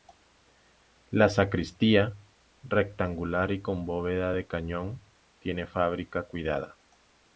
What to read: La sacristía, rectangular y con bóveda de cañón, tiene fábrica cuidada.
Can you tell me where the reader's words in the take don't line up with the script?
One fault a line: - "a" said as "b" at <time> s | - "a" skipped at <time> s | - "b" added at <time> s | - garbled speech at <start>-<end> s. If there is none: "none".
none